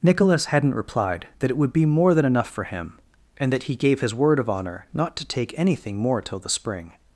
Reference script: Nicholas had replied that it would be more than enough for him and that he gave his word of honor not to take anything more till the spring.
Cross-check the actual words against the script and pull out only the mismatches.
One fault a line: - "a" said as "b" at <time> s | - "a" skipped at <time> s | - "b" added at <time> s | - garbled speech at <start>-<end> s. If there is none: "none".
- "had" said as "hadn't" at 0.5 s